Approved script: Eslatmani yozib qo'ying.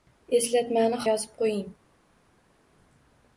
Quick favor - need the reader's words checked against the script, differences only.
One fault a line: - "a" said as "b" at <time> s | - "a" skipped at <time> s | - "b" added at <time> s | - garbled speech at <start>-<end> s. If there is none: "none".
none